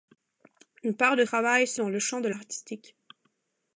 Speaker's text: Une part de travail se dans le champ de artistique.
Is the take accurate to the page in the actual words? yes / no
yes